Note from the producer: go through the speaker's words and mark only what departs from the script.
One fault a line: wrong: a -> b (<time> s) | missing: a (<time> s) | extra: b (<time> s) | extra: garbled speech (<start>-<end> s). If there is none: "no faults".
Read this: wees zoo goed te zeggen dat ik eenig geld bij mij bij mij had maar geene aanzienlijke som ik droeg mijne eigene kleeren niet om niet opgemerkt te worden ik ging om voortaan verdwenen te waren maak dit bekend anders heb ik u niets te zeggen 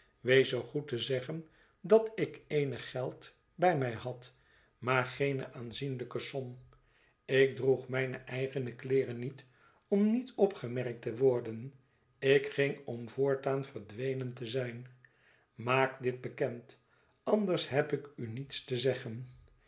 missing: bij mij (3.9 s)
wrong: waren -> zijn (14.5 s)